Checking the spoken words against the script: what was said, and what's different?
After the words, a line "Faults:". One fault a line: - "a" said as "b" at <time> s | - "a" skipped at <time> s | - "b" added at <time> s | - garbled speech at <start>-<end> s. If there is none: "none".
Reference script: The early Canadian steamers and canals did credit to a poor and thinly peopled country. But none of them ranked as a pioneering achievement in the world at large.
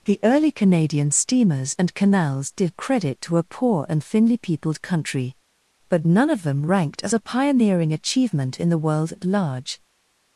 The early Canadian steamers and canals did credit to a poor and thinly peopled country. But none of them ranked as a pioneering achievement in the world at large.
Faults:
none